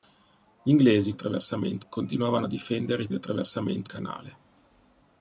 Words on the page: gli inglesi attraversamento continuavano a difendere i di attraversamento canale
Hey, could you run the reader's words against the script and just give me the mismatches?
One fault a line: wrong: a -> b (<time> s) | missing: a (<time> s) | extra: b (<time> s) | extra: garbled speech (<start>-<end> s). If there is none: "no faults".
no faults